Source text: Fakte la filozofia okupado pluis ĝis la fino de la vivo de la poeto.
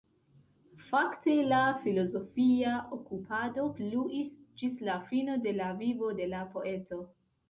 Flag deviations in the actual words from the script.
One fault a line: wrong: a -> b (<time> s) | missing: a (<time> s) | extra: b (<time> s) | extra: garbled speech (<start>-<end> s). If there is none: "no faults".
no faults